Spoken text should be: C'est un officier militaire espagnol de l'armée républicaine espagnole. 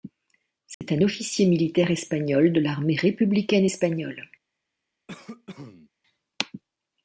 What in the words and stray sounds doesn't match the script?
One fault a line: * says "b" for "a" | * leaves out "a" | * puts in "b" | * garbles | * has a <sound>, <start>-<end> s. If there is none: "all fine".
* has a dropout, 0.7-0.8 s
* has a cough, 5.1-5.9 s